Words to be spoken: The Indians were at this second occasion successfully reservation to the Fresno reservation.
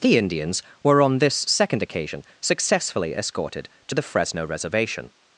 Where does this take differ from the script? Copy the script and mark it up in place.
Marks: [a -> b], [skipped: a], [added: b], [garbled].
The Indians were [at -> on] this second occasion successfully [reservation -> escorted] to the Fresno reservation.